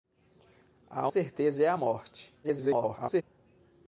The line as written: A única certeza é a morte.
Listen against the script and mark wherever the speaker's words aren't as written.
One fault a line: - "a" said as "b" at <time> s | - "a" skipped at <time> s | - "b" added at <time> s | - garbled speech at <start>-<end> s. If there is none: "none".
- "única" skipped at 1.1 s
- garbled speech at 2.4-3.2 s